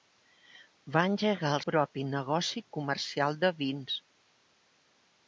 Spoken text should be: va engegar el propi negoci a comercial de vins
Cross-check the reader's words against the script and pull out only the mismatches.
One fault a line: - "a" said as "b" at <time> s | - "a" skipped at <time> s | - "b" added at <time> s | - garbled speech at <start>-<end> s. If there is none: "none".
none